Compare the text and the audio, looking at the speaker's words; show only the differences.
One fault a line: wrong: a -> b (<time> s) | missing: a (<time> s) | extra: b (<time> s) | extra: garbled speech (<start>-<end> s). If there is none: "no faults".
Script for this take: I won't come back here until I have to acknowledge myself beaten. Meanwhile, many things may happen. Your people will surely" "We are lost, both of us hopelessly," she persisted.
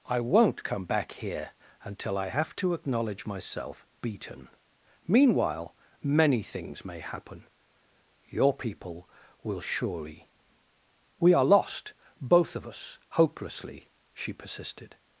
no faults